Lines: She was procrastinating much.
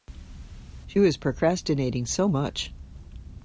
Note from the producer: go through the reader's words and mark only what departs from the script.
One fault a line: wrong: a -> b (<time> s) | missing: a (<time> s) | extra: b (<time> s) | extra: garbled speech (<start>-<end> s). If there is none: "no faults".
extra: so (2.1 s)